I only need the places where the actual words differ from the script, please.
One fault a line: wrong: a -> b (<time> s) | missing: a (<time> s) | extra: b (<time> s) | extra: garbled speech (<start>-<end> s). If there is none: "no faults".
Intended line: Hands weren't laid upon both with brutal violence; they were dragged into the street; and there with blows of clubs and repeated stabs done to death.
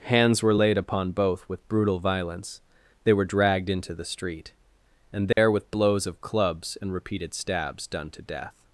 wrong: weren't -> were (0.4 s)